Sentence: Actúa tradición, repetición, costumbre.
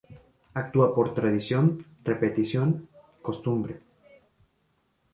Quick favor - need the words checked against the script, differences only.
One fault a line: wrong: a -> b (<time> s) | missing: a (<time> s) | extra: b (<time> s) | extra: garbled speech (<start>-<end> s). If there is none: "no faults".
extra: por (0.9 s)